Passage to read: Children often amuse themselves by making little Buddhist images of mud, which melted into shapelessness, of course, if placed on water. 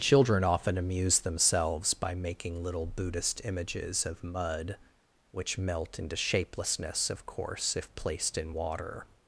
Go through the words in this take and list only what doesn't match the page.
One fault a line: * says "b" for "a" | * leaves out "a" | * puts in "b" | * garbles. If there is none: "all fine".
* says "melt" for "melted"
* says "in" for "on"